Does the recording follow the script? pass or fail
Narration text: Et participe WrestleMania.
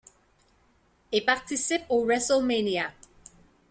fail